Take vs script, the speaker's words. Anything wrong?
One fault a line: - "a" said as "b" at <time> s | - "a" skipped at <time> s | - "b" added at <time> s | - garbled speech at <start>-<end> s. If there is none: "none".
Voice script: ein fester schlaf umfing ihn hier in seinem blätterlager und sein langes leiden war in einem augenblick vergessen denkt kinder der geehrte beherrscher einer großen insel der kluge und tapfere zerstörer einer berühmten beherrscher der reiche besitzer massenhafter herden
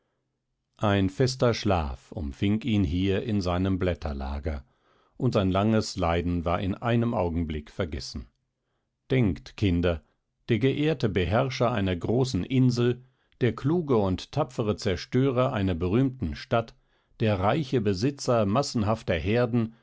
- "beherrscher" said as "stadt" at 16.4 s